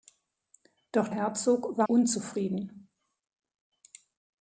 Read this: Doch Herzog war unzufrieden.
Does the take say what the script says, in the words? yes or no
yes